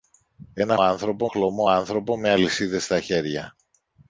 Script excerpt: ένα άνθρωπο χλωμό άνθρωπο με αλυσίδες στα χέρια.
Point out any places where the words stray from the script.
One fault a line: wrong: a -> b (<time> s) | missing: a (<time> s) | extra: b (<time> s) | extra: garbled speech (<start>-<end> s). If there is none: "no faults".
no faults